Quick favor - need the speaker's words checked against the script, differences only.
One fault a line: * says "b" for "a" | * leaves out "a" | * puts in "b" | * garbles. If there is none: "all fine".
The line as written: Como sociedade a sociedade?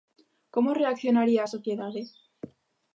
* says "reaccionaría" for "sociedade"